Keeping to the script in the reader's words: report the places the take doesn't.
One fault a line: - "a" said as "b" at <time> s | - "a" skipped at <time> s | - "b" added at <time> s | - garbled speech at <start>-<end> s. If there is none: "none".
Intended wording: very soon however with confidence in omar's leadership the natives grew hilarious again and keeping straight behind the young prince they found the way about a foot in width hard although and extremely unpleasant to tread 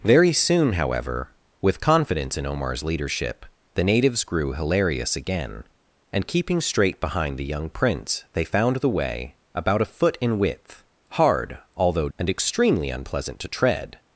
none